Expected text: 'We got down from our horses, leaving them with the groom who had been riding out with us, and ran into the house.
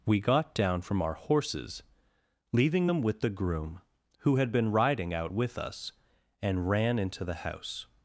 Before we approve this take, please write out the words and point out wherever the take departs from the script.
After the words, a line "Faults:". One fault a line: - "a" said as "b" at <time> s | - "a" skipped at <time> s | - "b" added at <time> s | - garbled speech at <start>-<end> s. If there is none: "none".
'We got down from our horses, leaving them with the groom who had been riding out with us, and ran into the house.
Faults:
none